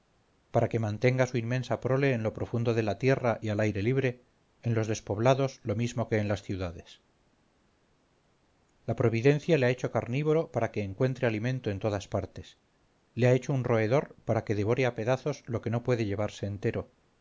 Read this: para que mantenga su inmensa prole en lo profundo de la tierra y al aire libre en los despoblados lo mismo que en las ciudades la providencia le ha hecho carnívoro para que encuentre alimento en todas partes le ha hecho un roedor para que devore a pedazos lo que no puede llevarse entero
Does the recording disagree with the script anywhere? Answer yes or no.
no